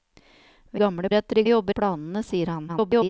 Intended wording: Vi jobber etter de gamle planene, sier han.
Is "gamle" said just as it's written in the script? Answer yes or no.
no